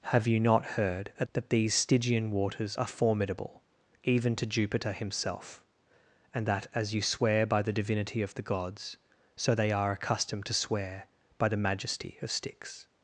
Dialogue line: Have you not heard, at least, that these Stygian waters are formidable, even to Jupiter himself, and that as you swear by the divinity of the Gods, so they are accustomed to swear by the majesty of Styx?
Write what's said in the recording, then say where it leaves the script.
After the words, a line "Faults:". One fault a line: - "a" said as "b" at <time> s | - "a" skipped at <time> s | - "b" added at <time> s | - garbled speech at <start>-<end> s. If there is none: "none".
Have you not heard, at that these Stygian waters are formidable, even to Jupiter himself, and that as you swear by the divinity of the Gods, so they are accustomed to swear by the majesty of Styx?
Faults:
- "least" skipped at 1.3 s